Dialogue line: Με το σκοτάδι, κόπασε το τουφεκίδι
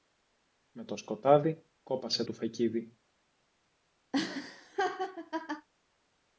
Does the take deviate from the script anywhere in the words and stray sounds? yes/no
yes